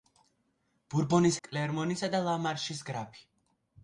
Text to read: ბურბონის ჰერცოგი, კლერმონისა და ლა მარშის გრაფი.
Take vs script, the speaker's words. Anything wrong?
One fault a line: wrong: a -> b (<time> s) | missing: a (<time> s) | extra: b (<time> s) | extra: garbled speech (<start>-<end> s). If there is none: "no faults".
missing: ჰერცოგი (1.4 s)